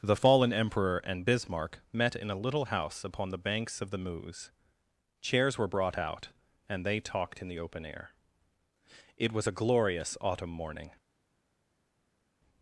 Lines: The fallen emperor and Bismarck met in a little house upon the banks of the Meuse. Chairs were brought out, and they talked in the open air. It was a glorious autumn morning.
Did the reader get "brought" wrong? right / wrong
right